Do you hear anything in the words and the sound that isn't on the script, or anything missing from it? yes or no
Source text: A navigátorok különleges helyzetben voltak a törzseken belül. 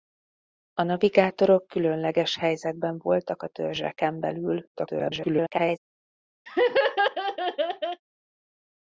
yes